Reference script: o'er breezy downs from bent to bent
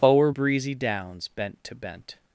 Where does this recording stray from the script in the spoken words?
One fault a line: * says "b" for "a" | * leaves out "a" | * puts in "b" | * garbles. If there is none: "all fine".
* leaves out "from"